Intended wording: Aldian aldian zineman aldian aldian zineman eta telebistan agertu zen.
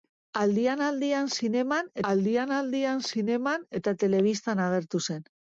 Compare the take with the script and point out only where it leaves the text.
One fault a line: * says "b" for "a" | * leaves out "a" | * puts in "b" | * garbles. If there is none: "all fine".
all fine